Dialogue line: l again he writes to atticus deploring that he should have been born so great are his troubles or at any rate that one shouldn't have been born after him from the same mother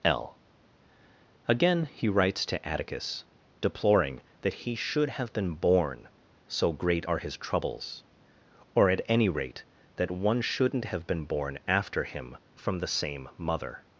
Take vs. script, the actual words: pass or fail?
pass